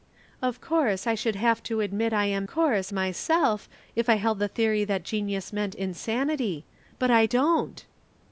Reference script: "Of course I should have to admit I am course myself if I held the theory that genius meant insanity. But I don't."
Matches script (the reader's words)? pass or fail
pass